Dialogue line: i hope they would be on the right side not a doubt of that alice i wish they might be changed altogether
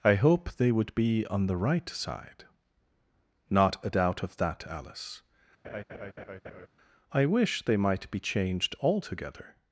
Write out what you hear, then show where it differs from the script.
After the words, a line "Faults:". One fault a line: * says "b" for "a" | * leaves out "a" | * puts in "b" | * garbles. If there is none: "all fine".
i hope they would be on the right side not a doubt of that alice i wish they might be changed altogether
Faults:
all fine